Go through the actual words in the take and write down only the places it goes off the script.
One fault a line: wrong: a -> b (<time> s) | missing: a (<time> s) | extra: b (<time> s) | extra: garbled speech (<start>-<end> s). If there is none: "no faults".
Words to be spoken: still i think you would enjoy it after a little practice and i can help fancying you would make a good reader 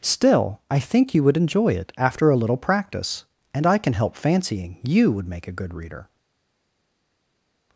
no faults